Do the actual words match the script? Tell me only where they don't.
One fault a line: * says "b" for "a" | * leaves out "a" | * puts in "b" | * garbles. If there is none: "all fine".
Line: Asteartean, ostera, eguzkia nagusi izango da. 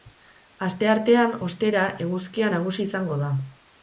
all fine